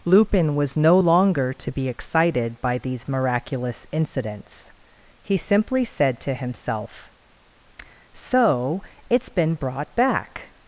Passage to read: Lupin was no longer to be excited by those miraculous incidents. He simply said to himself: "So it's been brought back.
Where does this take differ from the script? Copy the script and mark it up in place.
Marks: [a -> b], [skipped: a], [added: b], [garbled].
Lupin was no longer to be excited by [those -> these] miraculous incidents. He simply said to himself: "So it's been brought back.